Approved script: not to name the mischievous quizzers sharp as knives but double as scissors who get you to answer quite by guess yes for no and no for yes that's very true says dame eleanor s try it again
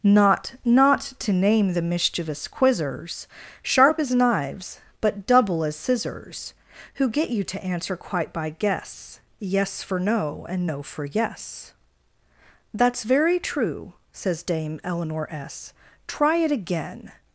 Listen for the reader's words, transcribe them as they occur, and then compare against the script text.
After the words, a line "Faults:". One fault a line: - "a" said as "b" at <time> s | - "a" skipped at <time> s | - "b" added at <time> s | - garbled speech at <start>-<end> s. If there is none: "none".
not not to name the mischievous quizzers sharp as knives but double as scissors who get you to answer quite by guess yes for no and no for yes that's very true says dame eleanor s try it again
Faults:
- "not" added at 0.7 s